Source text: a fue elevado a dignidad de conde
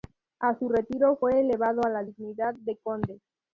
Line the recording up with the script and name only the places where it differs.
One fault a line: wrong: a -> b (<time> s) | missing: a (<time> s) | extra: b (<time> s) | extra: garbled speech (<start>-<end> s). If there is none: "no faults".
extra: su retiro (0.6 s)
extra: la (1.9 s)